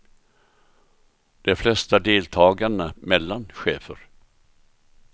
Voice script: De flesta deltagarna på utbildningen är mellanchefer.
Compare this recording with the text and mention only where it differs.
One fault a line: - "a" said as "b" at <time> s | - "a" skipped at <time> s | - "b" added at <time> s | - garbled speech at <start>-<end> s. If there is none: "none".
- "på utbildningen är" skipped at 2.9 s